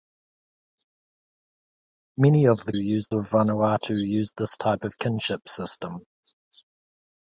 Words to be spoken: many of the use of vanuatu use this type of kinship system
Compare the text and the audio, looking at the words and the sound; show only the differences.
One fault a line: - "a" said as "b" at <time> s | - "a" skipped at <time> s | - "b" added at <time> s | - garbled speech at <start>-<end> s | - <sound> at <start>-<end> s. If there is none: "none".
none